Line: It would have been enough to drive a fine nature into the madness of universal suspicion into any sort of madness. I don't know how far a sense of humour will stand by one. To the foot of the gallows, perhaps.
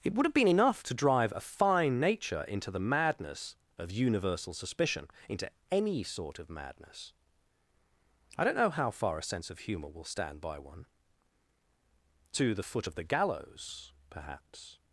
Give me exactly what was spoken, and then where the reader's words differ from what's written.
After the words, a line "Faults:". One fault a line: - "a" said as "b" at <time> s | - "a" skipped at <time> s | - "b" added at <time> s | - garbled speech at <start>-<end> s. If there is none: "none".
It would have been enough to drive a fine nature into the madness of universal suspicion into any sort of madness. I don't know how far a sense of humour will stand by one. To the foot of the gallows, perhaps.
Faults:
none